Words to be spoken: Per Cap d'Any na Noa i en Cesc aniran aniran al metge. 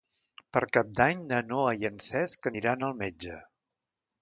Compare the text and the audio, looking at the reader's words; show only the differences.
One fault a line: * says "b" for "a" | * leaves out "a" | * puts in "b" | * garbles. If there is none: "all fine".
* leaves out "aniran"